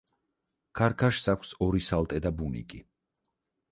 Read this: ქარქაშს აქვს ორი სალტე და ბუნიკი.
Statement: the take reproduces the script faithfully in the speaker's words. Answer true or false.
true